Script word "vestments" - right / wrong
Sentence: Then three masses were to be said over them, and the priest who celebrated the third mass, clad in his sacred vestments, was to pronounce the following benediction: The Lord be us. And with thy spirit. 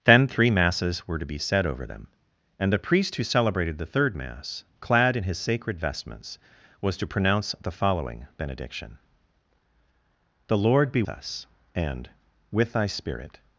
right